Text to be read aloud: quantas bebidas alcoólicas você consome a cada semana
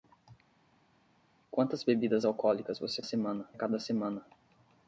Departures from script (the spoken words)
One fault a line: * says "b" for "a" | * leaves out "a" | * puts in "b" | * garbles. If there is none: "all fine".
* says "semana" for "consome"